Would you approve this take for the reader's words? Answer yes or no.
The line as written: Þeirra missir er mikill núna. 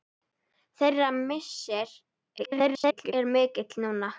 no